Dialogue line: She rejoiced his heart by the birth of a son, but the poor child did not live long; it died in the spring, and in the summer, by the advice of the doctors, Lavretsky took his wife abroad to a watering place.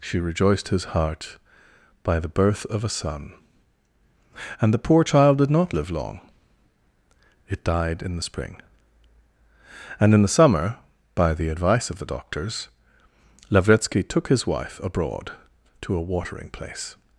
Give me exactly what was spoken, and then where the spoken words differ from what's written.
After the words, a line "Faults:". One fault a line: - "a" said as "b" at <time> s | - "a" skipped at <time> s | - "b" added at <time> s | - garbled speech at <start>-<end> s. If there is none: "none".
She rejoiced his heart by the birth of a son, and the poor child did not live long; it died in the spring, and in the summer, by the advice of the doctors, Lavretsky took his wife abroad to a watering place.
Faults:
- "but" said as "and" at 4.6 s